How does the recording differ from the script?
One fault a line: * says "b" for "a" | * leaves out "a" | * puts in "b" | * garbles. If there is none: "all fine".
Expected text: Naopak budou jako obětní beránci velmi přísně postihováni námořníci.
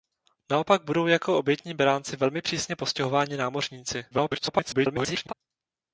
* garbles